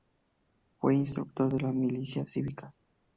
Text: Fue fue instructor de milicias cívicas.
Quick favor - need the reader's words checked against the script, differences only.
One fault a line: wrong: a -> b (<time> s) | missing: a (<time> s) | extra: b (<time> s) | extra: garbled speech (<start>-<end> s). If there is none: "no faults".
missing: fue (0.9 s)
extra: las (1.6 s)